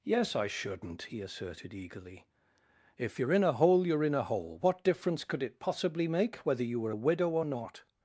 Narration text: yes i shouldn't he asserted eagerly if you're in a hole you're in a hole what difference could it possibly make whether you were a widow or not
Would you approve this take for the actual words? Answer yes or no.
yes